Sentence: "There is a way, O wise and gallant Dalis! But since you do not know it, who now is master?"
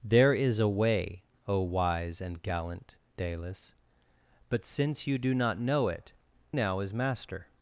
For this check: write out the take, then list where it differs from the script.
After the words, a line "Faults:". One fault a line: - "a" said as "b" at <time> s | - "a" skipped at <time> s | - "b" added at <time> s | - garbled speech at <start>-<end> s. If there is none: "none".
"There is a way, O wise and gallant Dalis! But since you do not know it, now is master?"
Faults:
- "who" skipped at 6.1 s